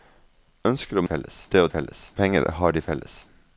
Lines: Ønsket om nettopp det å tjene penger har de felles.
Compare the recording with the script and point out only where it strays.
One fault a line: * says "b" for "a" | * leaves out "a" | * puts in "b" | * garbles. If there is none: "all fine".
* says "felles" for "nettopp"
* says "felles" for "tjene"